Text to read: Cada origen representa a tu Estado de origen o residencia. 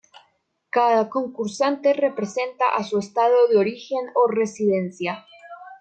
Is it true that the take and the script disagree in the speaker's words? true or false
true